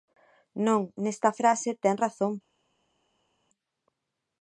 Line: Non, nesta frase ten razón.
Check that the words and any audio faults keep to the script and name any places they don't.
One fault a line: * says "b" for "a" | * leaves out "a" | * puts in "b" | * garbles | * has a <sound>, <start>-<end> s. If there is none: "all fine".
all fine